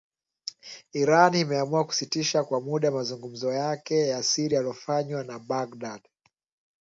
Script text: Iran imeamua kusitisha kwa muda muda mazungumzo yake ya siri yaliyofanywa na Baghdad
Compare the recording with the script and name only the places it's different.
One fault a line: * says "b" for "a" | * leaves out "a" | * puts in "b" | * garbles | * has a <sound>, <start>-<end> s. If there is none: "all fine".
* leaves out "muda"